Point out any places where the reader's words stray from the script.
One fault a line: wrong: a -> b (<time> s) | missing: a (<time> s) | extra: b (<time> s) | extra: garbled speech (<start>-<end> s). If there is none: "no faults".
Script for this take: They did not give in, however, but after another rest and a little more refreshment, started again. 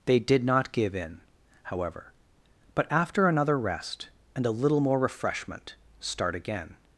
wrong: started -> start (6.0 s)